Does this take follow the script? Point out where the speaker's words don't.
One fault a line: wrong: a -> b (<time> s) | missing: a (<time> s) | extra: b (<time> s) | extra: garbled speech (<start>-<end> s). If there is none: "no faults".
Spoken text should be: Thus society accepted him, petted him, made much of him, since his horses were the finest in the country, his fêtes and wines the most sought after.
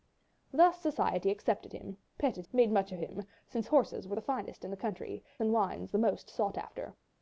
missing: him (2.5 s)
missing: his (3.6 s)
missing: his fêtes (5.2 s)